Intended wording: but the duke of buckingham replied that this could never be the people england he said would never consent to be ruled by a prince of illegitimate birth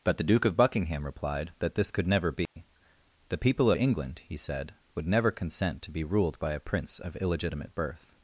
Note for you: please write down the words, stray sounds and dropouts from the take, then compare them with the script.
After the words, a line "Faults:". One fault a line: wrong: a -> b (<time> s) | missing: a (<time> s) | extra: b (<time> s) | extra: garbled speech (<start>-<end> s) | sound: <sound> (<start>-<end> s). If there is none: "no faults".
but the duke of buckingham replied that this could never be the people england he said would never consent to be ruled by a prince of illegitimate birth
Faults:
sound: dropout (2.5-2.6 s)